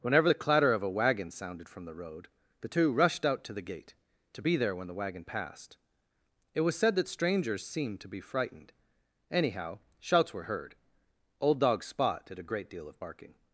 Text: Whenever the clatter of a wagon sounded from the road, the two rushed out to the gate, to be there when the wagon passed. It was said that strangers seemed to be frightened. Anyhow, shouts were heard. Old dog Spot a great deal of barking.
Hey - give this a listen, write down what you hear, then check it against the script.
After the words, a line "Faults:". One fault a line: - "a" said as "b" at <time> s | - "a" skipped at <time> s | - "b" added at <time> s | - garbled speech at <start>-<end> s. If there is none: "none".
Whenever the clatter of a wagon sounded from the road, the two rushed out to the gate, to be there when the wagon passed. It was said that strangers seemed to be frightened. Anyhow, shouts were heard. Old dog Spot did a great deal of barking.
Faults:
- "did" added at 12.3 s